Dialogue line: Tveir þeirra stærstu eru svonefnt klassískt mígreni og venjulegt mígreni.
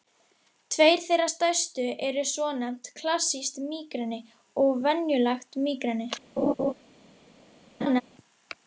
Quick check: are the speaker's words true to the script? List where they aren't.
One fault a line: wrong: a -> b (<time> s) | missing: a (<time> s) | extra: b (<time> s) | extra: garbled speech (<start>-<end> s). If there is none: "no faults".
no faults